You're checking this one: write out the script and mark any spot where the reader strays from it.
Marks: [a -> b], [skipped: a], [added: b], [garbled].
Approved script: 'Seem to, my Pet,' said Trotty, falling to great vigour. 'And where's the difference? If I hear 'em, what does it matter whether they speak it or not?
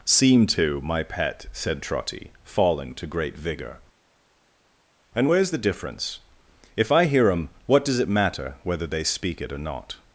'Seem to, my Pet,' said Trotty, falling to great vigour. 'And where's the difference? If I hear 'em, what does it matter whether they speak it or not?